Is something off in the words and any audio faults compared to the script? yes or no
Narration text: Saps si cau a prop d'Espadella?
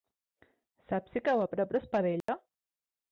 yes